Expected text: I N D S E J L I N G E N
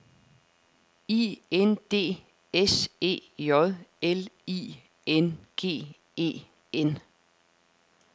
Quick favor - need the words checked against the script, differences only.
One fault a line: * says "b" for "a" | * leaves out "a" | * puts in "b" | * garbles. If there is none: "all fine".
all fine